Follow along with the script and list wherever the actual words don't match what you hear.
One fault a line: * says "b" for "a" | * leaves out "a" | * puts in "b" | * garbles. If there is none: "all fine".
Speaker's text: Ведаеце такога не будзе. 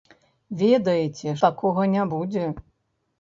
all fine